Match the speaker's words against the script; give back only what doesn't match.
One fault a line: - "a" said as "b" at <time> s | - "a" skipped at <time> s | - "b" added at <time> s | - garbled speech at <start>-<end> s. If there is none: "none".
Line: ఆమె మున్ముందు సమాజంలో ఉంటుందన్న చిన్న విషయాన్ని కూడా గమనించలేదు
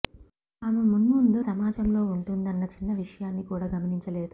none